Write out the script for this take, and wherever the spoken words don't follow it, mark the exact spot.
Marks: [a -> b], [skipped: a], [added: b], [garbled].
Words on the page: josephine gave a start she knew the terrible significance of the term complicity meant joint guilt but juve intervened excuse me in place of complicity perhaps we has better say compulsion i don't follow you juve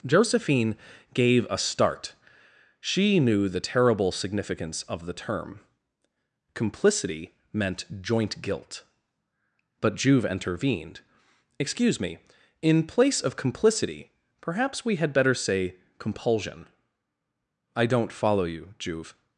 josephine gave a start she knew the terrible significance of the term complicity meant joint guilt but juve intervened excuse me in place of complicity perhaps we [has -> had] better say compulsion i don't follow you juve